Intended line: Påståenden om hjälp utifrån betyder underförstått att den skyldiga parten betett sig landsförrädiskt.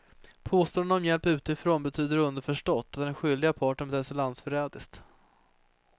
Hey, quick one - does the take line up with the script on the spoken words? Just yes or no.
yes